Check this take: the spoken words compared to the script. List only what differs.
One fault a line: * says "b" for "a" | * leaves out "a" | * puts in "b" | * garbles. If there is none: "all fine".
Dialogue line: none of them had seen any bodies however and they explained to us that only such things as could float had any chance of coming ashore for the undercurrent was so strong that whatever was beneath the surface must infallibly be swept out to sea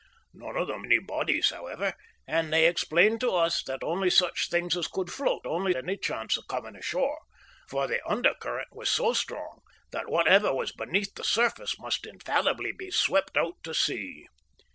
* leaves out "had seen"
* says "only" for "had"